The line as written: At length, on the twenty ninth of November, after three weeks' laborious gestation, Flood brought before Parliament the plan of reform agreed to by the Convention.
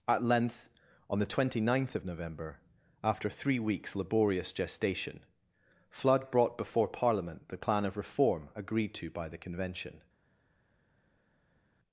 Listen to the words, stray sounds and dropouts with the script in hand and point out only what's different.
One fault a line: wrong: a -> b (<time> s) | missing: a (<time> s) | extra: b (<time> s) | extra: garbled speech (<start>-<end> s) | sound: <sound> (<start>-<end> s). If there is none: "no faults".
no faults